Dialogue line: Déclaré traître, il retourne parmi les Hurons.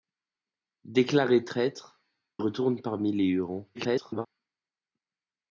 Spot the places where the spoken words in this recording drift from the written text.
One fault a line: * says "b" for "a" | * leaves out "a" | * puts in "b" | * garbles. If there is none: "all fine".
* leaves out "il"
* garbles